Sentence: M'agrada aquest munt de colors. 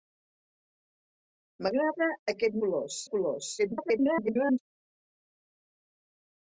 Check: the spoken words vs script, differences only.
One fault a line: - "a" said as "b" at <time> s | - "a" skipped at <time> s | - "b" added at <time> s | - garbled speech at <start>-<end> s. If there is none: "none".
- "munt" said as "colors" at 2.7 s
- garbled speech at 3.6-4.6 s